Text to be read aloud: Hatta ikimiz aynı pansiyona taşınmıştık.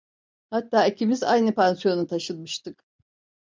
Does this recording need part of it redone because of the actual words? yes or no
no